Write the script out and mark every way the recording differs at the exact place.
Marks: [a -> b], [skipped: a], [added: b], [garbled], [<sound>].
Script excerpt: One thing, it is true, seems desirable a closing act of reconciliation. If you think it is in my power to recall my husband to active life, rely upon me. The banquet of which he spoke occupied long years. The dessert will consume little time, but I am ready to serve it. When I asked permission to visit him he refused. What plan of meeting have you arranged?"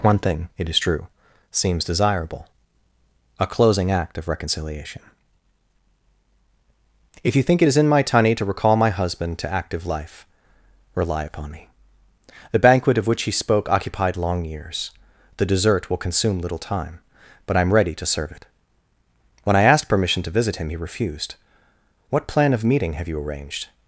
One thing, it is true, seems desirable a closing act of reconciliation. If you think it is in my [power -> tunny] to recall my husband to active life, rely upon me. The banquet of which he spoke occupied long years. The dessert will consume little time, but I am ready to serve it. When I asked permission to visit him he refused. What plan of meeting have you arranged?"